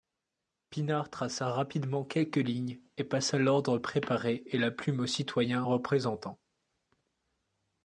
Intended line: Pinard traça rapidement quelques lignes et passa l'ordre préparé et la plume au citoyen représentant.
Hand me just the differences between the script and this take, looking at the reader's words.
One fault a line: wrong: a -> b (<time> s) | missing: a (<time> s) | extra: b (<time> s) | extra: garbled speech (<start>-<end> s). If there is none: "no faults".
no faults